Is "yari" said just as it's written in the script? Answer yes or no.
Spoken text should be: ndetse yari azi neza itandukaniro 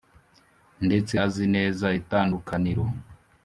no